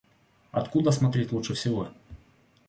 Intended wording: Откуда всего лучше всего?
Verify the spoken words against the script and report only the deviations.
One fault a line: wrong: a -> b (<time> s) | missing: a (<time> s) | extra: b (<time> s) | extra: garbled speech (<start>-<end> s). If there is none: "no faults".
wrong: всего -> смотреть (0.9 s)